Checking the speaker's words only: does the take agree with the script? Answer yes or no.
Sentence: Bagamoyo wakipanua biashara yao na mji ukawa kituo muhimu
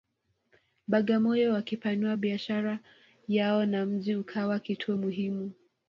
yes